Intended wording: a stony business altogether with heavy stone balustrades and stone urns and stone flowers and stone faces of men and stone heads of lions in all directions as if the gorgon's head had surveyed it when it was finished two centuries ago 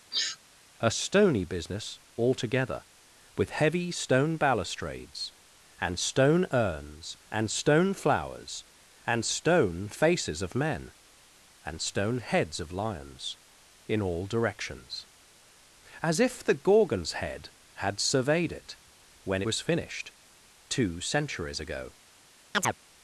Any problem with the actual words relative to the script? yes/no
yes